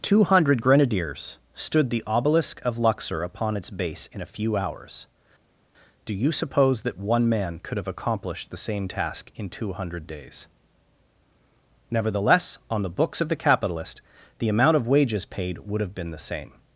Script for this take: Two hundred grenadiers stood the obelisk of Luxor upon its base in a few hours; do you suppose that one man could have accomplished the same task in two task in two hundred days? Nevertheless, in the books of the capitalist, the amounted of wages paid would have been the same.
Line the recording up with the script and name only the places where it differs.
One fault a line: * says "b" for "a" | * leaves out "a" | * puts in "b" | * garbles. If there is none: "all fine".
* leaves out "task in two"
* says "on" for "in"
* says "amount" for "amounted"